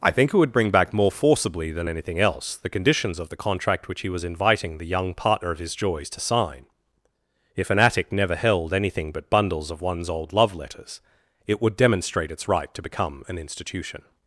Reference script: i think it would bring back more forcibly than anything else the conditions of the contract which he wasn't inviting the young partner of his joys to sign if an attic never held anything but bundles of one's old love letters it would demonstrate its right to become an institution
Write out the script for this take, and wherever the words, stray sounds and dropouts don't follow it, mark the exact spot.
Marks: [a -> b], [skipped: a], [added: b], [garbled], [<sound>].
i think it would bring back more forcibly than anything else the conditions of the contract which he [wasn't -> was] inviting the young partner of his joys to sign if an attic never held anything but bundles of one's old love letters it would demonstrate its right to become an institution